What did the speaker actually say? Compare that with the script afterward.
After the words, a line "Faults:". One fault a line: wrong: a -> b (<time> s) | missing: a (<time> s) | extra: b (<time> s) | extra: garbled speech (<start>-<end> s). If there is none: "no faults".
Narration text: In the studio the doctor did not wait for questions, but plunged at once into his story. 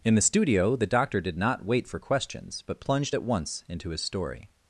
In the studio the doctor did not wait for questions, but plunged at once into his story.
Faults:
no faults